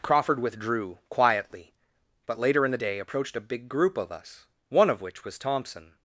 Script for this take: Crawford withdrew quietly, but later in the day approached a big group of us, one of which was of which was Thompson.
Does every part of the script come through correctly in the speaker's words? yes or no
no